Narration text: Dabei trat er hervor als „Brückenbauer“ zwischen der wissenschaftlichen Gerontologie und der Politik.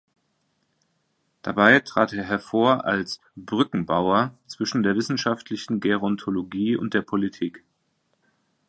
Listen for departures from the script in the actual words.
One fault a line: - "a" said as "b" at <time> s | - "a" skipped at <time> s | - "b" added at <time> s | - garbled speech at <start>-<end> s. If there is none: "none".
none